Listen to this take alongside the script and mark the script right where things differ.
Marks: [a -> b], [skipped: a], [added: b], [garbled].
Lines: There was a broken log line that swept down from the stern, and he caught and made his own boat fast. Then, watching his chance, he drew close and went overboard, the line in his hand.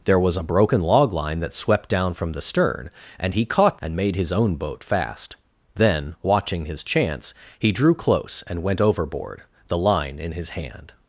There was a broken log line that swept down from the stern, and he caught and made his own boat fast. Then, watching his chance, he drew close and went overboard, the line in his hand.